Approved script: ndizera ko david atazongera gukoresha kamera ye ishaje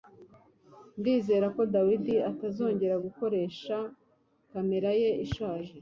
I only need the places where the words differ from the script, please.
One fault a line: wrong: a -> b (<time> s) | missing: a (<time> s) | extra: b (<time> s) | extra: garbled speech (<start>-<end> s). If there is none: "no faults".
no faults